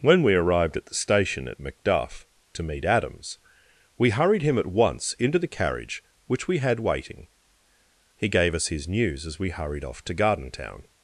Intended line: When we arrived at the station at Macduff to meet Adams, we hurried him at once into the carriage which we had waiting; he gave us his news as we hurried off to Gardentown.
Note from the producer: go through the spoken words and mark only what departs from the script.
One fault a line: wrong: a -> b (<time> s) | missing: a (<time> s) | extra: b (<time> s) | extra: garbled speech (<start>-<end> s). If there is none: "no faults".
no faults